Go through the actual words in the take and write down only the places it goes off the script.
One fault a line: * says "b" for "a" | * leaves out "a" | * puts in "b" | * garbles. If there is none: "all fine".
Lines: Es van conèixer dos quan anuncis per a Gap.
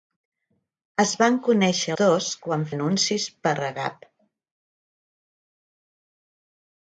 all fine